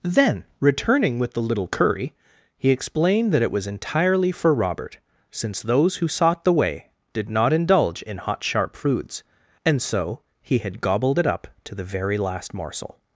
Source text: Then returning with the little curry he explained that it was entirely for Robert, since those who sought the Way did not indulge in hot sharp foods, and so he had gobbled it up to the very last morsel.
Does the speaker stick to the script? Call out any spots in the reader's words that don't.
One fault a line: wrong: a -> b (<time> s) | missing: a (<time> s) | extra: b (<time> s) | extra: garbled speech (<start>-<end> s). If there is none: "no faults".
no faults